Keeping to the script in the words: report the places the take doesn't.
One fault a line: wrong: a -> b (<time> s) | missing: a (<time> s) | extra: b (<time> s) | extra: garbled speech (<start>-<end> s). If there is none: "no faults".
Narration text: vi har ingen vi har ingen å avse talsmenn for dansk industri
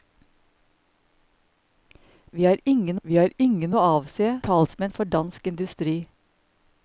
no faults